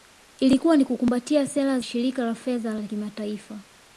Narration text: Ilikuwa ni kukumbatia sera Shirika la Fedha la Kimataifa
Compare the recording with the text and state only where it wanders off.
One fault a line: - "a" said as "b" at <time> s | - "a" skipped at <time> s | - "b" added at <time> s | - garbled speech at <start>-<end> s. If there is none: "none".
none